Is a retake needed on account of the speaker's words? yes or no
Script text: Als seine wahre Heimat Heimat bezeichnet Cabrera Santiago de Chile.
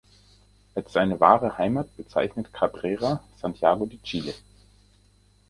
yes